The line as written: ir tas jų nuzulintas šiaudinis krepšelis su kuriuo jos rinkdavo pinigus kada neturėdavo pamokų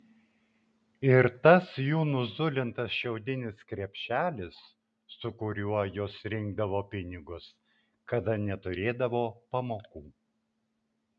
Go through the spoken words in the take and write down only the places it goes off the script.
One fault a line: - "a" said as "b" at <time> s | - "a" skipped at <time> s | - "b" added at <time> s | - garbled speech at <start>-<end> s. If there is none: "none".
none